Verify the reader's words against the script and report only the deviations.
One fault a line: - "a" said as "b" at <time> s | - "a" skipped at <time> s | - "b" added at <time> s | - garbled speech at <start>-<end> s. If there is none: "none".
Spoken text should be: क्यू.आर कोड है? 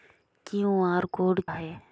none